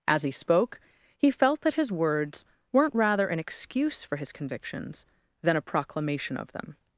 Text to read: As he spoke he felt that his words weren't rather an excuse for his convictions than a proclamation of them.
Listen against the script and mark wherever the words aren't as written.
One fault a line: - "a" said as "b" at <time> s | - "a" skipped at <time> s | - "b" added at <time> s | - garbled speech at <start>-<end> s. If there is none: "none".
none